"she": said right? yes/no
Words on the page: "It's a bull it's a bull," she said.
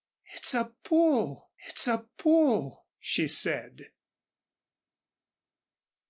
yes